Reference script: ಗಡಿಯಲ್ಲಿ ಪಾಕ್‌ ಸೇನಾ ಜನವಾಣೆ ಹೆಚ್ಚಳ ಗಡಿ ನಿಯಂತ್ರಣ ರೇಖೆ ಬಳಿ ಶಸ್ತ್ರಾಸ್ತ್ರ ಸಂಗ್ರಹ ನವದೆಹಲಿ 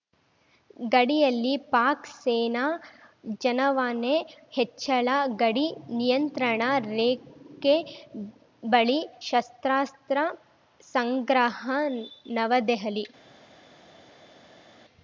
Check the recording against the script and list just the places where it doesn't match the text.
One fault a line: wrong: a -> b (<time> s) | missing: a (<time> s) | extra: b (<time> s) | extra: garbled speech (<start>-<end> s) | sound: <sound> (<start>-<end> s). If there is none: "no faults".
no faults